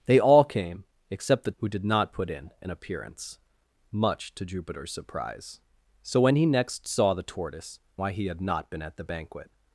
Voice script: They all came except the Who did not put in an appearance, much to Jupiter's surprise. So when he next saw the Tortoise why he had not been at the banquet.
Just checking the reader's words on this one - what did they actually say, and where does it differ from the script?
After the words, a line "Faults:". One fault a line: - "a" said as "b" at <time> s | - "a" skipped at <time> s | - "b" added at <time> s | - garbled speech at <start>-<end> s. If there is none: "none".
They all came except the Who did not put in an appearance, much to Jupiter's surprise. So when he next saw the Tortoise why he had not been at the banquet.
Faults:
none